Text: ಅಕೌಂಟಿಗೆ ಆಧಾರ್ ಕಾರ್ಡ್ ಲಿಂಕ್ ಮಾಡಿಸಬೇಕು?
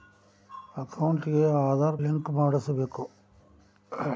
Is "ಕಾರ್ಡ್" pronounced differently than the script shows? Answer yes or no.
yes